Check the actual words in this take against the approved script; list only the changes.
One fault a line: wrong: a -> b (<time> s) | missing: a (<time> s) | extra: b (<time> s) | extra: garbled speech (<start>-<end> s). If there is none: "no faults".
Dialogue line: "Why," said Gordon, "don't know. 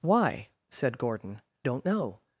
no faults